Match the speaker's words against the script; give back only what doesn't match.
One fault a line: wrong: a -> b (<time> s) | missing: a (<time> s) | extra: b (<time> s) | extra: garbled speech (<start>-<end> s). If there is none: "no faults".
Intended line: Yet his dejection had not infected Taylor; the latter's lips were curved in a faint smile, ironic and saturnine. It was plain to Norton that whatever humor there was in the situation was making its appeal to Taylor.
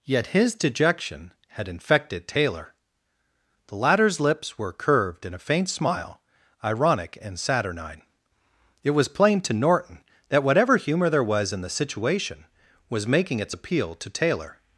missing: not (1.7 s)